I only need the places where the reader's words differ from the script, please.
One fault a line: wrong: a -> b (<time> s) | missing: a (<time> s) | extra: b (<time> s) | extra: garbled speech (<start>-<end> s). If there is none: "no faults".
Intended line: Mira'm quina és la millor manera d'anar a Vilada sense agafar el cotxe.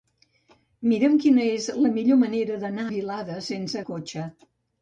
missing: a (2.9 s)
missing: agafar (3.8 s)